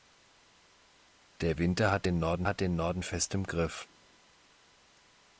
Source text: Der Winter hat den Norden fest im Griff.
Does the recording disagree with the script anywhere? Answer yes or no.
yes